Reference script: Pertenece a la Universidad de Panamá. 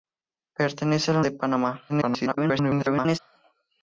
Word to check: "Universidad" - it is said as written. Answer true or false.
false